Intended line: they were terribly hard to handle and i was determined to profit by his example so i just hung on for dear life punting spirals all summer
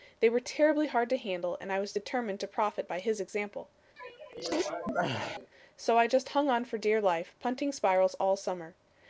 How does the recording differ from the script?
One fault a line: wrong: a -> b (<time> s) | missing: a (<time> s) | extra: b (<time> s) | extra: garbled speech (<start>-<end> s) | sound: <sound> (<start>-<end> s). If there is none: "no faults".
sound: sneeze (4.0-5.5 s)